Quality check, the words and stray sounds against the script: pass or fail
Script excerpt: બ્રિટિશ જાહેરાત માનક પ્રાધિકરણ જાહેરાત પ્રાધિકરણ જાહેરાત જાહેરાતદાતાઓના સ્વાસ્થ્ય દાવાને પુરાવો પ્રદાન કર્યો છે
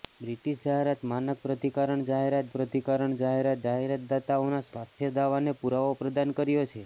pass